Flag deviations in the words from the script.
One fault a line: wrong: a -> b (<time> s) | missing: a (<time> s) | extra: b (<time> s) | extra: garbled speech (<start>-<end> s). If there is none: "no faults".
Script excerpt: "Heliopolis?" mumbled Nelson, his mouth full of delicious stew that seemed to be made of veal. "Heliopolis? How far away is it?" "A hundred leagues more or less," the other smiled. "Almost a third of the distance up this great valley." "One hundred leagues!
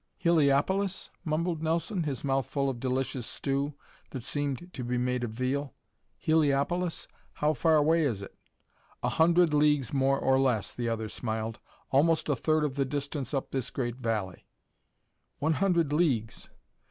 no faults